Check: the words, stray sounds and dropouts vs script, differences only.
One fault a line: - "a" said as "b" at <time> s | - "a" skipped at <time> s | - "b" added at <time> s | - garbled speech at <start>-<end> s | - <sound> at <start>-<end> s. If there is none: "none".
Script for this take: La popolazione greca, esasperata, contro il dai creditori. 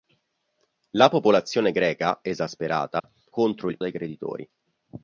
- dropout at 3.0-3.0 s